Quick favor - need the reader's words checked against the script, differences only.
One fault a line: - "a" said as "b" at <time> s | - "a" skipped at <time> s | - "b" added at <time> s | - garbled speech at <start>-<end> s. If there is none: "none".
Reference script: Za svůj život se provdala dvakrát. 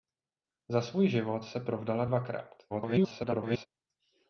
- garbled speech at 2.7-3.7 s